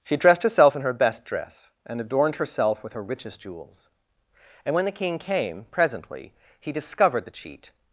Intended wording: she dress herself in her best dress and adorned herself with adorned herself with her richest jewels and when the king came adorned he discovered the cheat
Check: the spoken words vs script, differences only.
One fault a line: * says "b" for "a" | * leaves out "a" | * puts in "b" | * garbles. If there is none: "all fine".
* says "dressed" for "dress"
* leaves out "adorned herself with"
* says "presently" for "adorned"